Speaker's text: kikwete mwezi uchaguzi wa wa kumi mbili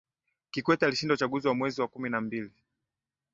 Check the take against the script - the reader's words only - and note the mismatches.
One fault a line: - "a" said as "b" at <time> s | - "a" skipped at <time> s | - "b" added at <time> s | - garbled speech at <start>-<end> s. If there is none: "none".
- "mwezi" said as "alishinda" at 0.8 s
- "mwezi" added at 1.6 s
- "na" added at 2.1 s